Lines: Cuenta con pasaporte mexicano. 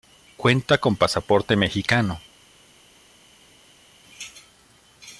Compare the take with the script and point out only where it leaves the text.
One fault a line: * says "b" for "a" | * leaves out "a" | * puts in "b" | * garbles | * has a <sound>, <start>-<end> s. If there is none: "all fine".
all fine